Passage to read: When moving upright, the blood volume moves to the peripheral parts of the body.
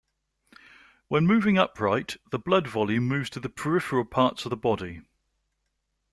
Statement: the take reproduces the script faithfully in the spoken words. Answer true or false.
true